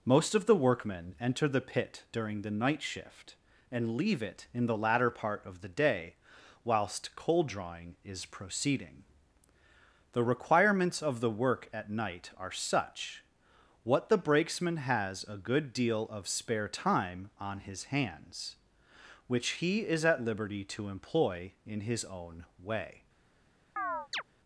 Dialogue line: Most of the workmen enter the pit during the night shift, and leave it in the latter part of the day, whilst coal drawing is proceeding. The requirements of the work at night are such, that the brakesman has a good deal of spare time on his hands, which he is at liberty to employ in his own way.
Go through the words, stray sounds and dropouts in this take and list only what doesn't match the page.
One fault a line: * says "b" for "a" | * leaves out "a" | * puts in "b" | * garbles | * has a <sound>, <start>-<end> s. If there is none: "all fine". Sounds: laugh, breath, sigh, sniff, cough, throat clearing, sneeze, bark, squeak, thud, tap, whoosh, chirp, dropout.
* says "what" for "that"
* has a chirp, 23.8-24.2 s